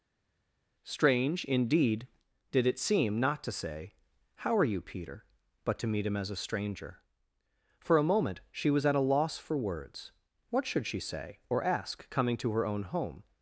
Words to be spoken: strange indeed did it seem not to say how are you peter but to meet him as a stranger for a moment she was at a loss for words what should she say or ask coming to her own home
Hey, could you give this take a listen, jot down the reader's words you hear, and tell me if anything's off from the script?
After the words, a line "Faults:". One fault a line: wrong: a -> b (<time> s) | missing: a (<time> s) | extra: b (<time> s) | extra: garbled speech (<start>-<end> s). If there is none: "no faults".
strange indeed did it seem not to say how are you peter but to meet him as a stranger for a moment she was at a loss for words what should she say or ask coming to her own home
Faults:
no faults